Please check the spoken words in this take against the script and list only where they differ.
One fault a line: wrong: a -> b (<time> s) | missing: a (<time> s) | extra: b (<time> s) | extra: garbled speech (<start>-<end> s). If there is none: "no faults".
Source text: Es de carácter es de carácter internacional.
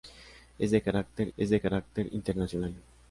no faults